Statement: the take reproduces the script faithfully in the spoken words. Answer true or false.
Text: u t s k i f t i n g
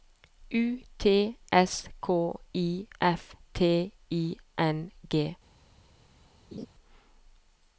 true